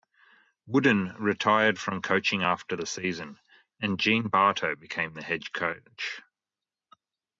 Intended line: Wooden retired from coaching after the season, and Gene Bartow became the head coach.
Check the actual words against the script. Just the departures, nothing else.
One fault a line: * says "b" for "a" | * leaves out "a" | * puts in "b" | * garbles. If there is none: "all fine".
all fine